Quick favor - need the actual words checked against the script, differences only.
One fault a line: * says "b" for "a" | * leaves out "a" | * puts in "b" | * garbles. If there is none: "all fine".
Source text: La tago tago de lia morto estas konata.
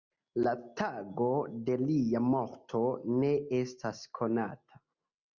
* leaves out "tago"
* puts in "ne"